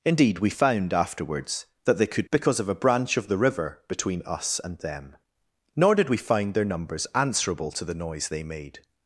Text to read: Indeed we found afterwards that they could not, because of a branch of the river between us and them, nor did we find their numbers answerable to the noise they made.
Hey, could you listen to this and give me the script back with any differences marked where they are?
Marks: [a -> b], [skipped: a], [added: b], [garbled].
Indeed we found afterwards that they could [skipped: not,] because of a branch of the river between us and them, nor did we find their numbers answerable to the noise they made.